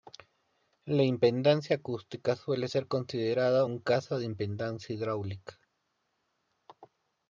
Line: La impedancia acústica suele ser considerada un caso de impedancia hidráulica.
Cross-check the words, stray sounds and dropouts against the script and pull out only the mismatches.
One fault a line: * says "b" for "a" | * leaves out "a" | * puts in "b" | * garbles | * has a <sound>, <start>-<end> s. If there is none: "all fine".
all fine